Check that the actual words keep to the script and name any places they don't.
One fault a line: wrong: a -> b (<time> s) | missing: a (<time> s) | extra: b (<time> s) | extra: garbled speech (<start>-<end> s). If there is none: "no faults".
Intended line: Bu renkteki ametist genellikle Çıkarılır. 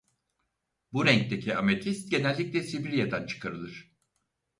extra: Sibirya'dan (2.6 s)